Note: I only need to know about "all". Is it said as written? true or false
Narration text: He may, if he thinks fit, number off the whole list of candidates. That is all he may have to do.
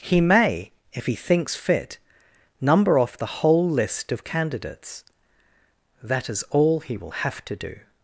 true